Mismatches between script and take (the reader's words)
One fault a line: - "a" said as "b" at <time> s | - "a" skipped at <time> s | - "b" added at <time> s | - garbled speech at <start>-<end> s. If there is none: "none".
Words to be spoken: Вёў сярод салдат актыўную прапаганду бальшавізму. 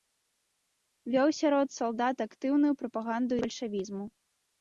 none